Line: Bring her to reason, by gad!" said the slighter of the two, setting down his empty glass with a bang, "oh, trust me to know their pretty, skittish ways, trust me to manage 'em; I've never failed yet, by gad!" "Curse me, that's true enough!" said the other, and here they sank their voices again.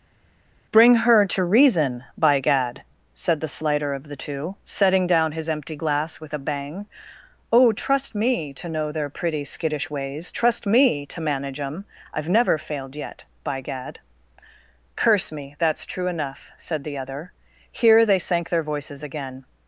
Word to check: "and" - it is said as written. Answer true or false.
false